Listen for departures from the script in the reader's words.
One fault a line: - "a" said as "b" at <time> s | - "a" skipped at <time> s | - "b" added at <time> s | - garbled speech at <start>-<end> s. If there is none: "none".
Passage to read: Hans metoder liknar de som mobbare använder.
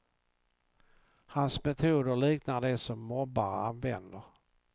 none